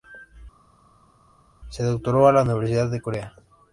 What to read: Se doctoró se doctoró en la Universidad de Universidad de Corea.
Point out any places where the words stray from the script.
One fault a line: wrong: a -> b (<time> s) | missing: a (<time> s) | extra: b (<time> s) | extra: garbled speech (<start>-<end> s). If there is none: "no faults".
missing: se doctoró (2.3 s)
missing: Universidad de (3.0 s)